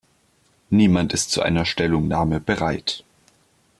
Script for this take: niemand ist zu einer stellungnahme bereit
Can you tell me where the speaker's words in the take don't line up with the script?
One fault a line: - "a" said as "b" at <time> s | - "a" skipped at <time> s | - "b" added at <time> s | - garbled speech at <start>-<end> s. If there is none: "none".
none